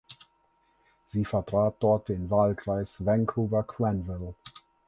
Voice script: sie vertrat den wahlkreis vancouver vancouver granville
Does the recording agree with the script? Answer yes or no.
no